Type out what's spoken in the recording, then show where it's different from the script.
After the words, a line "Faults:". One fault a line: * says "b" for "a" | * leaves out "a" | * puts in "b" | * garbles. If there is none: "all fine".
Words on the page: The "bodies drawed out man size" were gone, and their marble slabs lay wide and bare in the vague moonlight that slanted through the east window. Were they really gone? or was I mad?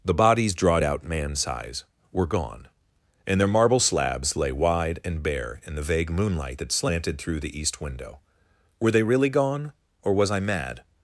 The "bodies drawed out man size" were gone, and their marble slabs lay wide and bare in the vague moonlight that slanted through the east window. Were they really gone? or was I mad?
Faults:
all fine